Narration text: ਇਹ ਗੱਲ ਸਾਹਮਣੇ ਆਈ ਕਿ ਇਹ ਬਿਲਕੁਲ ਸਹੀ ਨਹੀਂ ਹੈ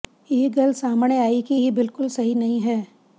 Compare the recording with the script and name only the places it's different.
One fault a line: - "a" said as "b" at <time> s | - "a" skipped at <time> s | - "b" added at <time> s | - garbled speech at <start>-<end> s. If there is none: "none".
none